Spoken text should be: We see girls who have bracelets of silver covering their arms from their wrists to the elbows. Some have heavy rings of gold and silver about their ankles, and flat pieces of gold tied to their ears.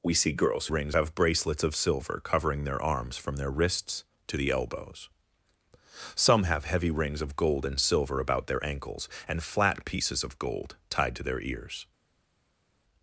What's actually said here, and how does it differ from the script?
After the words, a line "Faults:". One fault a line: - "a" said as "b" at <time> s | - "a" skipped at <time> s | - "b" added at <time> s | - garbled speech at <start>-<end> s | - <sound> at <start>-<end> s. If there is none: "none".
We see girls rings have bracelets of silver covering their arms from their wrists to the elbows. Some have heavy rings of gold and silver about their ankles, and flat pieces of gold tied to their ears.
Faults:
- "who" said as "rings" at 0.7 s